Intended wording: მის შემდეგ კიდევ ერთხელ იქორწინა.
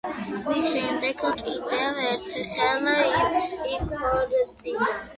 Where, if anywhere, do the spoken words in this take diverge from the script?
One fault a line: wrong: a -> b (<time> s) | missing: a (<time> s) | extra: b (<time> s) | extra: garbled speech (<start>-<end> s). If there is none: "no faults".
no faults